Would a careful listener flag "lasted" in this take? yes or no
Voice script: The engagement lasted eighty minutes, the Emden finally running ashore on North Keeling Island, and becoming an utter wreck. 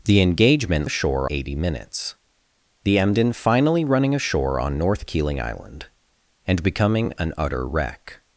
yes